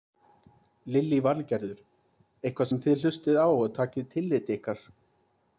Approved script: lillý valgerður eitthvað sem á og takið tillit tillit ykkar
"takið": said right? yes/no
yes